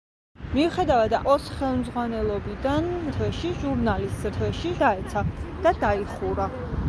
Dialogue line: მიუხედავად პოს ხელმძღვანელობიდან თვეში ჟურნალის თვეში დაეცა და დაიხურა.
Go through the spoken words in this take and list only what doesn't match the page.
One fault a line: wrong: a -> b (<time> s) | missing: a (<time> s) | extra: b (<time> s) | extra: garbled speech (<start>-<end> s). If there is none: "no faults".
no faults